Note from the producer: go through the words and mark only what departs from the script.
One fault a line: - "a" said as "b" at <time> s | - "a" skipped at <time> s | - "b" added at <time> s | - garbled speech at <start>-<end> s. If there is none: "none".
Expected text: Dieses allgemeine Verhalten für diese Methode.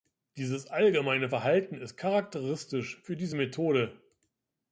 - "ist charakteristisch" added at 1.8 s